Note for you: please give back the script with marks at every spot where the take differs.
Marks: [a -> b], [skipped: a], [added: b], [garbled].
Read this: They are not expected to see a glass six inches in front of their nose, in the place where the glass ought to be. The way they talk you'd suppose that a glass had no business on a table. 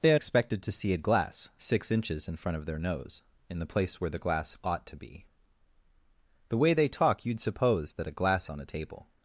They are [skipped: not] expected to see a glass six inches in front of their nose, in the place where the glass ought to be. The way they talk you'd suppose that a glass [skipped: had no business] on a table.